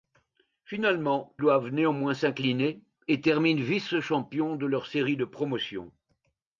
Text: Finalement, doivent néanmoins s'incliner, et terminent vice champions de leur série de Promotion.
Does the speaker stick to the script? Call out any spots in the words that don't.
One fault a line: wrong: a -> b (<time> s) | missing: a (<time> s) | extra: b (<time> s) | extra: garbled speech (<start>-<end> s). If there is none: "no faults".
no faults